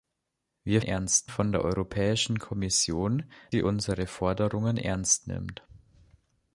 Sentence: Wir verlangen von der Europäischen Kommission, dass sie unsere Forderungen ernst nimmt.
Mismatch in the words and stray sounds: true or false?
true